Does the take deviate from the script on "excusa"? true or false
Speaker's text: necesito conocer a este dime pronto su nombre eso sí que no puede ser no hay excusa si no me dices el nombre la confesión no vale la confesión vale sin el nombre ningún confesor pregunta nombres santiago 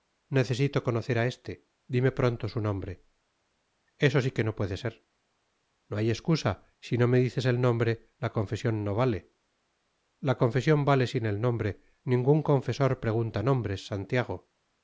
false